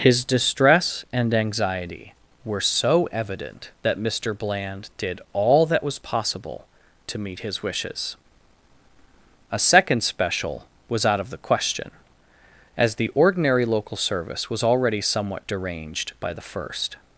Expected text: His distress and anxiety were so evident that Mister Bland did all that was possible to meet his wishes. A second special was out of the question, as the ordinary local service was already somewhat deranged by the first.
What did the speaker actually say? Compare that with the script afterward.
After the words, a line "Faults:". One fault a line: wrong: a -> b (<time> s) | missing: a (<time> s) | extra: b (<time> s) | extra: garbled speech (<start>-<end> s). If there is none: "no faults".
His distress and anxiety were so evident that Mister Bland did all that was possible to meet his wishes. A second special was out of the question, as the ordinary local service was already somewhat deranged by the first.
Faults:
no faults